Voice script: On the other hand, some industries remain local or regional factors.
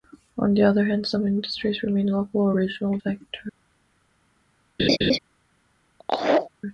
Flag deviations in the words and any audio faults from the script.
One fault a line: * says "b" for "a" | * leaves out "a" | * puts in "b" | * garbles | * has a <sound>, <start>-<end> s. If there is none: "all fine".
* has a laugh, 4.8-5.2 s
* has a laugh, 6.0-6.5 s